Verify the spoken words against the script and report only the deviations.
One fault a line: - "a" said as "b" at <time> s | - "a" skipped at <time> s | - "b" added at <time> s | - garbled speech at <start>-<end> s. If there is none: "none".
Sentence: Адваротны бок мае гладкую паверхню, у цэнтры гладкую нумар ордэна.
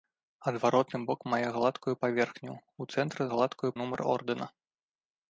none